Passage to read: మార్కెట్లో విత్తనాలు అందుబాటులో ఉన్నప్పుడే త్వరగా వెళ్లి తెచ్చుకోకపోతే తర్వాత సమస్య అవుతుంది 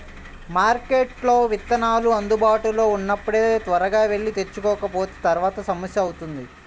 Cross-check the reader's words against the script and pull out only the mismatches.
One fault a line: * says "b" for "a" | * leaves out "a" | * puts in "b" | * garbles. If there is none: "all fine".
all fine